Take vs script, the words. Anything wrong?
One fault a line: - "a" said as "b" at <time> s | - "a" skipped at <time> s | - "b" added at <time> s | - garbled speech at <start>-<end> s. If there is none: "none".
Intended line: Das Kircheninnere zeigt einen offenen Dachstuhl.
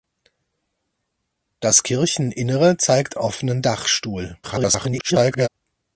- "einen" skipped at 3.2 s
- garbled speech at 4.4-5.5 s